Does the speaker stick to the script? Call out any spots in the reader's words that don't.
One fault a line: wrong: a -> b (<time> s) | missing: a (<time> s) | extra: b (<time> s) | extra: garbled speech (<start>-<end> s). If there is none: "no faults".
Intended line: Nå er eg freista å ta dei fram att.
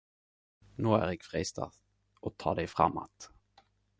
no faults